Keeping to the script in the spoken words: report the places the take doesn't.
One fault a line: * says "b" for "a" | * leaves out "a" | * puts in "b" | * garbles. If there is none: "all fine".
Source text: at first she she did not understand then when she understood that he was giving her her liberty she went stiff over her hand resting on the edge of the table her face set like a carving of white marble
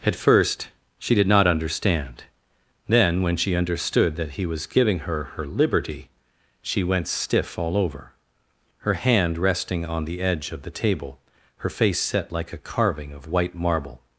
* leaves out "she"
* puts in "all"